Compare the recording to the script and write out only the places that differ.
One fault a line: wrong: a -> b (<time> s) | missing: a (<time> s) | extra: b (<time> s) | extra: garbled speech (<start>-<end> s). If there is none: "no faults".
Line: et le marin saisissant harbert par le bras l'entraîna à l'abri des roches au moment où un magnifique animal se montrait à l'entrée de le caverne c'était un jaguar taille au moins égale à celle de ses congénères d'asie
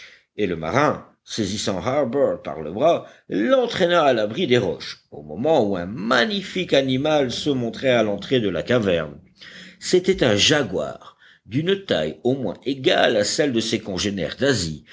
wrong: le -> la (8.5 s)
extra: d'une (11.4 s)